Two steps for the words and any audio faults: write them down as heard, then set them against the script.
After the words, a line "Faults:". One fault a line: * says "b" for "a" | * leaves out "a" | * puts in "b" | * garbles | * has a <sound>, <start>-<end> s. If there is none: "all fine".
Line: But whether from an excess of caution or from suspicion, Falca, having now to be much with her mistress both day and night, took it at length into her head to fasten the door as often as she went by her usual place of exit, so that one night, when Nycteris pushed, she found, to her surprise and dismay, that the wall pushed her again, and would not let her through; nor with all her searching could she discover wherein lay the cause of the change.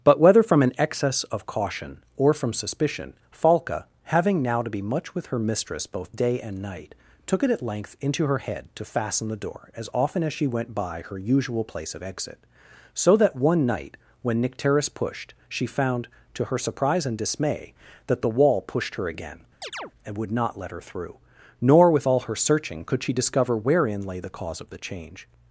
But whether from an excess of caution or from suspicion, Falca, having now to be much with her mistress both day and night, took it at length into her head to fasten the door as often as she went by her usual place of exit, so that one night, when Nycteris pushed, she found, to her surprise and dismay, that the wall pushed her again, and would not let her through; nor with all her searching could she discover wherein lay the cause of the change.
Faults:
* has a chirp, 19.6-19.9 s